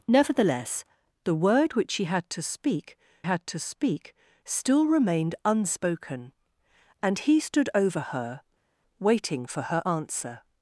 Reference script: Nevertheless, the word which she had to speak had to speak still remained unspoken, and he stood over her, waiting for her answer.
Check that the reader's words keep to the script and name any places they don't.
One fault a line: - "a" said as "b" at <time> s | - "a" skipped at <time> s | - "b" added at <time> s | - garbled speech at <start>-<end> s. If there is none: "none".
none